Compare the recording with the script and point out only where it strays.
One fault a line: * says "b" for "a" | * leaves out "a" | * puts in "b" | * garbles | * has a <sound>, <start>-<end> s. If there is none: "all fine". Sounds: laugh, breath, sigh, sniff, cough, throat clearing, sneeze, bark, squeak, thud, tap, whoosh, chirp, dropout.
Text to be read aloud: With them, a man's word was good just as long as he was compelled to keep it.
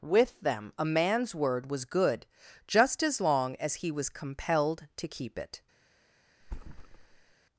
* has a thud, 6.4-7.3 s